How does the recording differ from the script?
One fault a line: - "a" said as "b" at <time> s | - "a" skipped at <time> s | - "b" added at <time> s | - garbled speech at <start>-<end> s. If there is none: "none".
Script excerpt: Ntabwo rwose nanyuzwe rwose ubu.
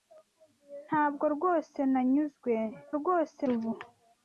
none